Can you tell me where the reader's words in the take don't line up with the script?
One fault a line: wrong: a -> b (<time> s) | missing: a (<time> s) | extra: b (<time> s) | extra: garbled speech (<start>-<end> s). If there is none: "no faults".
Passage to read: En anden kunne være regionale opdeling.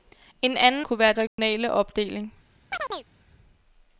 no faults